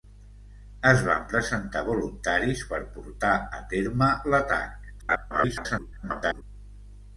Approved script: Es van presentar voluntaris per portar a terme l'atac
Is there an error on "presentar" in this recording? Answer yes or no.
no